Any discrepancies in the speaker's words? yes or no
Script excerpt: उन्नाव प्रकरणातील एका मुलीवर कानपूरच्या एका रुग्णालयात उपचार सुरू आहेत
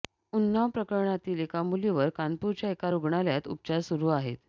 no